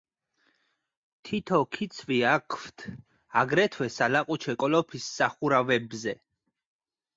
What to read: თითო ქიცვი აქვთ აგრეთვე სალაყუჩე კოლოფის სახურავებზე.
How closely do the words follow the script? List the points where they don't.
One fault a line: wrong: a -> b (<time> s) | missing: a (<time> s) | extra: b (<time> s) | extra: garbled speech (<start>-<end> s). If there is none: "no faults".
no faults